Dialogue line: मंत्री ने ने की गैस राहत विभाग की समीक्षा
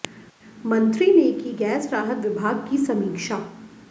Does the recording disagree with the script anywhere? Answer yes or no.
yes